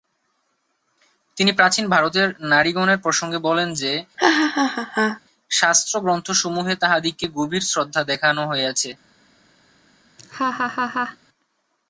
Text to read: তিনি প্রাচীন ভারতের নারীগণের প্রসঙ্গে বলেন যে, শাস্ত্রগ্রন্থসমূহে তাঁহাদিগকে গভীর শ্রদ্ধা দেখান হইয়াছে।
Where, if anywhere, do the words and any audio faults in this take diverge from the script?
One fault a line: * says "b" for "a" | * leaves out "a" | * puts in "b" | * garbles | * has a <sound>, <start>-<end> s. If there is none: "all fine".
* has a laugh, 4.2-5.2 s
* has a laugh, 10.2-11.2 s